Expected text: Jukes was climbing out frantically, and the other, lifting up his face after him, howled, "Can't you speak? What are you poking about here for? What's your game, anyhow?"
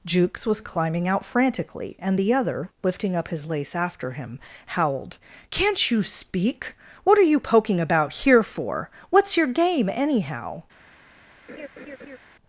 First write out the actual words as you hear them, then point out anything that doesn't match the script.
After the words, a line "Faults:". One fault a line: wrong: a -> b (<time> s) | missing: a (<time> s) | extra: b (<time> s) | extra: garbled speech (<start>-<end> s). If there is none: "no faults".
Jukes was climbing out frantically, and the other, lifting up his lace after him, howled, "Can't you speak? What are you poking about here for? What's your game, anyhow?"
Faults:
wrong: face -> lace (3.5 s)